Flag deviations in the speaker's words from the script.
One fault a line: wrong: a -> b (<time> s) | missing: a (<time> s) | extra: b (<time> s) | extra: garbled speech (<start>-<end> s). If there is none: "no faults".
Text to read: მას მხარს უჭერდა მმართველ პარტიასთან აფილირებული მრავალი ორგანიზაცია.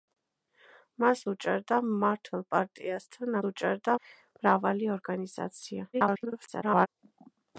missing: მხარს (1.2 s)
wrong: აფილირებული -> უჭერდა (3.5 s)
extra: garbled speech (5.9-6.9 s)